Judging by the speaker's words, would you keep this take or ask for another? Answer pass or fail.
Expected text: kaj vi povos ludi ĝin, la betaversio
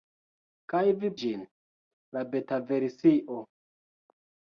fail